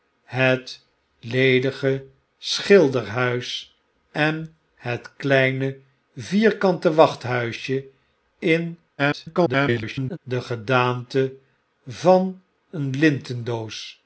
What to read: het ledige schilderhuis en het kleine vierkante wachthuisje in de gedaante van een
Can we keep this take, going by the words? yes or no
no